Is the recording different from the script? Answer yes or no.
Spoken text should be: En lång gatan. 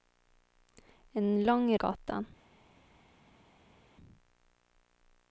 no